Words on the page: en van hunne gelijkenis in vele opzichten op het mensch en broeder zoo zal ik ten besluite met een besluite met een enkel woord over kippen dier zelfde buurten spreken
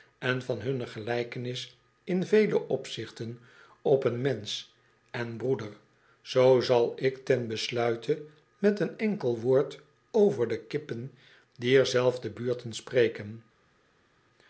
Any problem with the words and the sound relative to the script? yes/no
yes